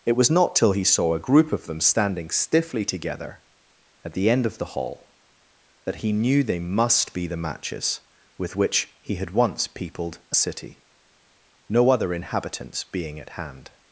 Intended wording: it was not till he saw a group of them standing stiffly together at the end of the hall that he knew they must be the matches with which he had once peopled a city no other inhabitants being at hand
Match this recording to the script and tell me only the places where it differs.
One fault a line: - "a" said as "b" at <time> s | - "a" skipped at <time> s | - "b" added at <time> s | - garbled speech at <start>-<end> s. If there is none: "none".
none